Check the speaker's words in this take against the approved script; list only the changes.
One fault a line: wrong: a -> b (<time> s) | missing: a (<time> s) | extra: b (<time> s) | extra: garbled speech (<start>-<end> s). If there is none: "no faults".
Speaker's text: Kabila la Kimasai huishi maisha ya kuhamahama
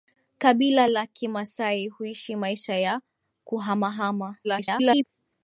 extra: garbled speech (4.4-5.0 s)